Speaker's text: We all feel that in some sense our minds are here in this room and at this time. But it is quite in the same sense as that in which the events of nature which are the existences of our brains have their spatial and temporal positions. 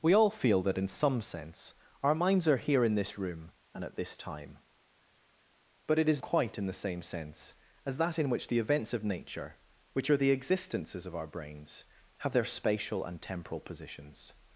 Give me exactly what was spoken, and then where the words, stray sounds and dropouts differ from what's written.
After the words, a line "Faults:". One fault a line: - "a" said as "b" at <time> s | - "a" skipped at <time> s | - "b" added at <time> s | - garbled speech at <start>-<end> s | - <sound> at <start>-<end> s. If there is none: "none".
We all feel that in some sense our minds are here in this room and at this time. But it is quite in the same sense as that in which the events of nature which are the existences of our brains have their spatial and temporal positions.
Faults:
none